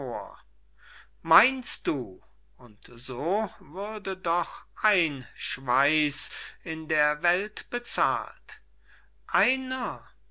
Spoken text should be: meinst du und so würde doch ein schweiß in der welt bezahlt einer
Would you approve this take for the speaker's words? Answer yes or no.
yes